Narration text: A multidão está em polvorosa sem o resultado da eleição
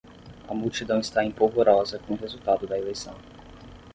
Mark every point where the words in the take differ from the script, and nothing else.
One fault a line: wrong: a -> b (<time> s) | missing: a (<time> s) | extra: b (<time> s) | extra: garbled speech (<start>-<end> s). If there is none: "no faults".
wrong: sem -> com (2.0 s)